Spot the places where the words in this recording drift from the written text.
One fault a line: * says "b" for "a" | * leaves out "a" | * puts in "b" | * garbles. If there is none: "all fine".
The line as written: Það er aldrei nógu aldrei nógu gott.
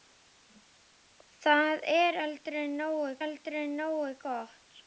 all fine